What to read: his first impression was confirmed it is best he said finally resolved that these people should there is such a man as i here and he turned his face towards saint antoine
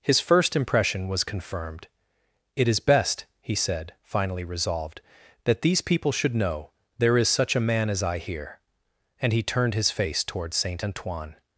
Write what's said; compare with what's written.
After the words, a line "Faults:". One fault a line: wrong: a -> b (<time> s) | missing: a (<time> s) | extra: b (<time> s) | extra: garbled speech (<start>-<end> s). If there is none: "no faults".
his first impression was confirmed it is best he said finally resolved that these people should know there is such a man as i here and he turned his face towards saint antoine
Faults:
extra: know (6.3 s)